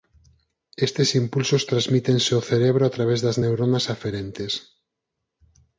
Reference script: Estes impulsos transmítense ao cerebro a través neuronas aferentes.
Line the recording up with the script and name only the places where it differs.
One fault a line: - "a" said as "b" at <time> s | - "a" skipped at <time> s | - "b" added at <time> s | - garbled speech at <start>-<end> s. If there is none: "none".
- "das" added at 3.2 s